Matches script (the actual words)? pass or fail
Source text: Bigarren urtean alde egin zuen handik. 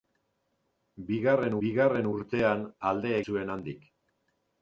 fail